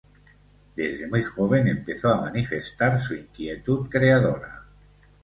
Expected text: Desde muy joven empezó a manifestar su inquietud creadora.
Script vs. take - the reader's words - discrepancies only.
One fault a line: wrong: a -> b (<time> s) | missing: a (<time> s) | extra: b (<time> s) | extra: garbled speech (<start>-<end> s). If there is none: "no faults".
no faults